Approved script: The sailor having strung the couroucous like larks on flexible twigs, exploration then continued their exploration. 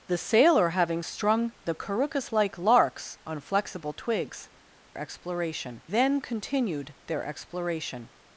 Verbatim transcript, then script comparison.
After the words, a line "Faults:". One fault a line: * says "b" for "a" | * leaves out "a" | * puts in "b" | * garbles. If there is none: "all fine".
The sailor having strung the couroucous like larks on flexible twigs, exploration then continued their exploration.
Faults:
all fine